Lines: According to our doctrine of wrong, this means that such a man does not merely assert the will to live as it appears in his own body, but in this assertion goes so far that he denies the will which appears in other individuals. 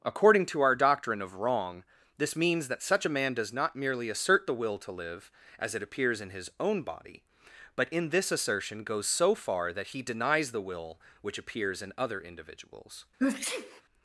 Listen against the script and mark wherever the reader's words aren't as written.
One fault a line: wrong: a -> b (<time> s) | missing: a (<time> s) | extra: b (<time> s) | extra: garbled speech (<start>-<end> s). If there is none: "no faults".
no faults